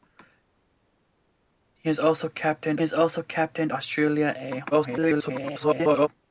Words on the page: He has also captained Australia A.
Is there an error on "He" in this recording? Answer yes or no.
no